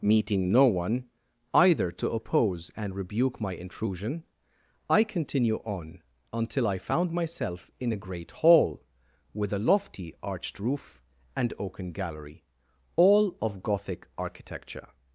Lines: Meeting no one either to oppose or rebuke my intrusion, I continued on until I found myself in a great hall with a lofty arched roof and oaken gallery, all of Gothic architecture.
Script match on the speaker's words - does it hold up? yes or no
no